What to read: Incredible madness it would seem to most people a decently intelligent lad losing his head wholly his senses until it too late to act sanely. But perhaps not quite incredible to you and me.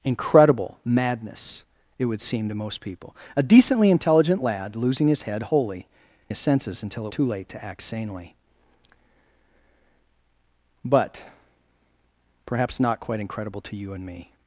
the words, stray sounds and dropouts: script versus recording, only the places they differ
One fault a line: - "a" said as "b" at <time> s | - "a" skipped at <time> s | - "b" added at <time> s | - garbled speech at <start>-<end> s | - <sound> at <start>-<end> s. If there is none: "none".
none